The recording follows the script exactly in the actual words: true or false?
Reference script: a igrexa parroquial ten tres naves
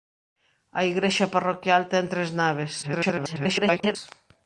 false